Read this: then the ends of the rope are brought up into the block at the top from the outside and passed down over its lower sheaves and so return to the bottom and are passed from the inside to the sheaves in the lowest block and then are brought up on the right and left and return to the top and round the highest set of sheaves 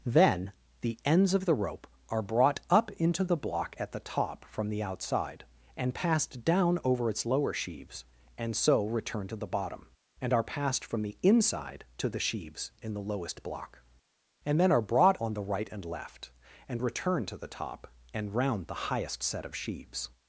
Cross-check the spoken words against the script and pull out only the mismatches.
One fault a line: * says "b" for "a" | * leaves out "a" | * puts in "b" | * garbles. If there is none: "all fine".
* leaves out "up"